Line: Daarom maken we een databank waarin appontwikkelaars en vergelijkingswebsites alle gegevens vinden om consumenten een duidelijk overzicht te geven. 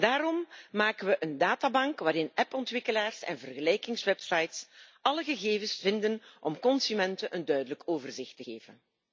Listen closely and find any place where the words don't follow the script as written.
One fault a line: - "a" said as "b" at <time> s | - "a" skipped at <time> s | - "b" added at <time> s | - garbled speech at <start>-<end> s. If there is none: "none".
none